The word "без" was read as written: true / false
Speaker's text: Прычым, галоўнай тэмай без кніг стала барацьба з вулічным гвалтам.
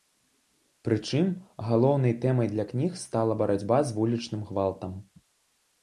false